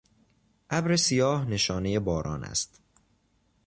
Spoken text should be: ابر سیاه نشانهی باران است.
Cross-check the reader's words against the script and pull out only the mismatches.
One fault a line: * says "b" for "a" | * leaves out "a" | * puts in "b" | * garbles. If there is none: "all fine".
all fine